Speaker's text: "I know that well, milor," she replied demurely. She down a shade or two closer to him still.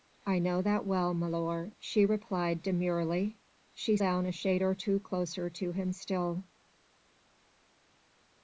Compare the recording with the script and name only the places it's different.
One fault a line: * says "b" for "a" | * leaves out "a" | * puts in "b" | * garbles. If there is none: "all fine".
all fine